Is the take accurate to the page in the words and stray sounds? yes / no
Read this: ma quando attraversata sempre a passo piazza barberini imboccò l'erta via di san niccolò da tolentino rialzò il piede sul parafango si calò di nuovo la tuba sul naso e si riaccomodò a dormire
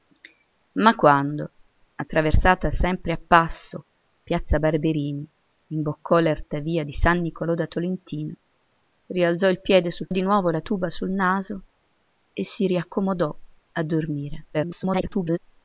no